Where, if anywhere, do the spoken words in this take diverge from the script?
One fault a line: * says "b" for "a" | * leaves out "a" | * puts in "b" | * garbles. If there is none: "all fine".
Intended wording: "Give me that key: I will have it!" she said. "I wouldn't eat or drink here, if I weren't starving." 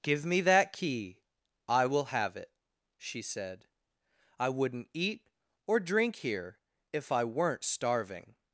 all fine